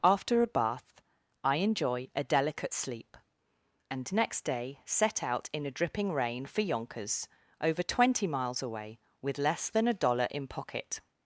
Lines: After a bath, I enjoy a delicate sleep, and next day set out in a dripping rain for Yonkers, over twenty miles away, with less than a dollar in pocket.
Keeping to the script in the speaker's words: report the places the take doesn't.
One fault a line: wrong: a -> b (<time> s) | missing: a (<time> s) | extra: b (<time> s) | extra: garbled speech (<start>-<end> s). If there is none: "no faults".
no faults